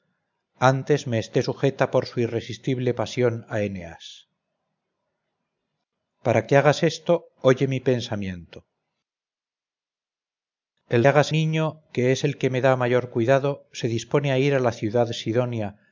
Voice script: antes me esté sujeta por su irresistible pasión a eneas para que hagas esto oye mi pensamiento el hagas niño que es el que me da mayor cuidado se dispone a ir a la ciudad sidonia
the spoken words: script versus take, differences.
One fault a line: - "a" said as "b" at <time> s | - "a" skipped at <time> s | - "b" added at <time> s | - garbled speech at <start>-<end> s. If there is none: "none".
none